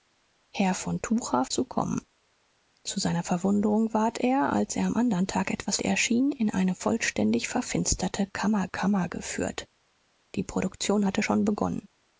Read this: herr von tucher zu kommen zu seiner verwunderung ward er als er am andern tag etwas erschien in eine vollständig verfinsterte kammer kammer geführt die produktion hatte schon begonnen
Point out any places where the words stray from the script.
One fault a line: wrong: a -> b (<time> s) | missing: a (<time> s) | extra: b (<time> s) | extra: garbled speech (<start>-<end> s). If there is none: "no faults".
no faults